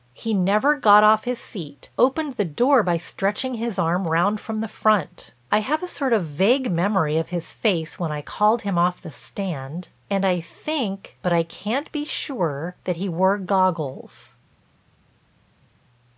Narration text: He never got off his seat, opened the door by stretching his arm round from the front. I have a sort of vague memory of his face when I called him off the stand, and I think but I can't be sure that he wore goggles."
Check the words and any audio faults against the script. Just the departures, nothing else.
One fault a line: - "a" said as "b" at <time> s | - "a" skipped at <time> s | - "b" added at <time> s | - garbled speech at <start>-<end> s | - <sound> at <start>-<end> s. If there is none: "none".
none